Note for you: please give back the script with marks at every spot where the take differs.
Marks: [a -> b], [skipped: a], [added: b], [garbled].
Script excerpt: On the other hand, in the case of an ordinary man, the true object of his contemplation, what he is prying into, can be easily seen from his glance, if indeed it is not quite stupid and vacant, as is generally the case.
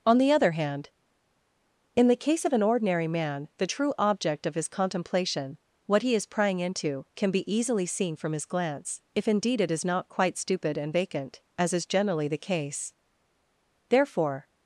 On the other hand, in the case of an ordinary man, the true object of his contemplation, what he is prying into, can be easily seen from his glance, if indeed it is not quite stupid and vacant, as is generally the case. [added: Therefore]